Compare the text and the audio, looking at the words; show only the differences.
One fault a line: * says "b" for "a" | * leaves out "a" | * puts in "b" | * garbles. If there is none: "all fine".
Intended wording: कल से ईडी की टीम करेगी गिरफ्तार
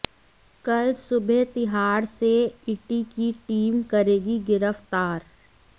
* puts in "सुबह तिहाड़"